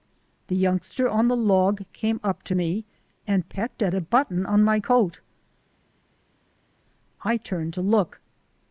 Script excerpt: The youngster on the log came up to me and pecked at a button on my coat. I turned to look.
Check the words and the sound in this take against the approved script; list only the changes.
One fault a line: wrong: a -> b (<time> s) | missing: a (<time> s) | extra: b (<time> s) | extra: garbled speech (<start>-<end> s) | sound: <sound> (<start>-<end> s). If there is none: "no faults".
no faults